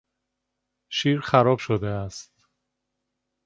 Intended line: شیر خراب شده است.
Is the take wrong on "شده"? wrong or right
right